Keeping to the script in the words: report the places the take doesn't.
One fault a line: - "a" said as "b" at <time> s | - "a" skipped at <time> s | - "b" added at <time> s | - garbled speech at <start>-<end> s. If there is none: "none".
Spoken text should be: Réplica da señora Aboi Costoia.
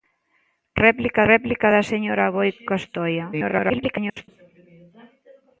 - "réplica" added at 1.3 s
- garbled speech at 3.3-4.3 s